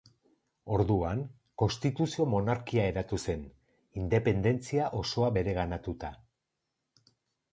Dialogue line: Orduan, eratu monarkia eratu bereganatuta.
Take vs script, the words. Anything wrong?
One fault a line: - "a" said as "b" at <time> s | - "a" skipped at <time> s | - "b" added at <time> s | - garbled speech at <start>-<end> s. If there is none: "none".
- "eratu" said as "konstituzio" at 1.6 s
- "zen independentzia osoa" added at 3.3 s